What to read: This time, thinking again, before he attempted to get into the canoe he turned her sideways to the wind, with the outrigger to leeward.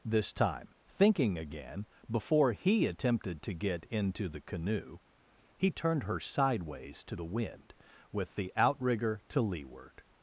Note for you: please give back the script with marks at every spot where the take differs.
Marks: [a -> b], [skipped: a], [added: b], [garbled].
This time, thinking again, before he attempted to get into the canoe he turned her sideways to the wind, with the outrigger to leeward.